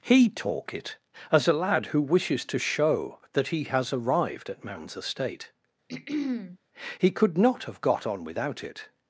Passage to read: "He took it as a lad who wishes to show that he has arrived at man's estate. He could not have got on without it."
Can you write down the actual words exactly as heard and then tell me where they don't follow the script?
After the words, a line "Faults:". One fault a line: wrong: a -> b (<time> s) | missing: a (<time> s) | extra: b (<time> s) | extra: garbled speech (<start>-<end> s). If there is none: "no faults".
"He talk it as a lad who wishes to show that he has arrived at man's estate. He could not have got on without it."
Faults:
wrong: took -> talk (0.3 s)